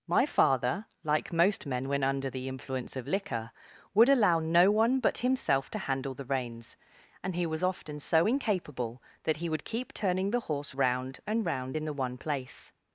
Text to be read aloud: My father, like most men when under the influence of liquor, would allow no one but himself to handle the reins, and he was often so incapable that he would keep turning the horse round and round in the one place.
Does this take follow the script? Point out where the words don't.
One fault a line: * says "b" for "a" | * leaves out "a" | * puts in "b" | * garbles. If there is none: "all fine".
all fine